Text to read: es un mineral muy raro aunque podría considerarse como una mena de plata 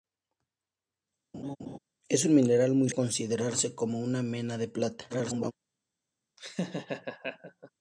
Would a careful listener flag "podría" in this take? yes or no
yes